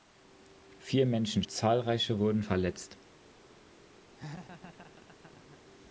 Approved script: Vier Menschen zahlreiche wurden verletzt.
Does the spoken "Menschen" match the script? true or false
true